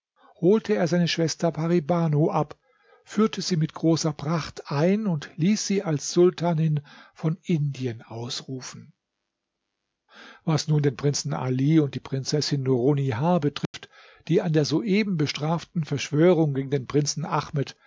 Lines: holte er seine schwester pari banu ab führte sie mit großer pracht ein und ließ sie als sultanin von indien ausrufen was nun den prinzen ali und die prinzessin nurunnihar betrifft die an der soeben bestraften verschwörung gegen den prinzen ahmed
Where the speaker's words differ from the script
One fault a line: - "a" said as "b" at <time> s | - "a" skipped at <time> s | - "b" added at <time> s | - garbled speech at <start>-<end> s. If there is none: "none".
none